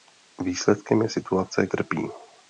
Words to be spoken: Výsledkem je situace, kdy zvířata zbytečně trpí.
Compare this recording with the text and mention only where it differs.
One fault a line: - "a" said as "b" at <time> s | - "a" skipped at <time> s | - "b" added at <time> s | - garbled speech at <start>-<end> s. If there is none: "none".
- "kdy zvířata zbytečně" skipped at 1.7 s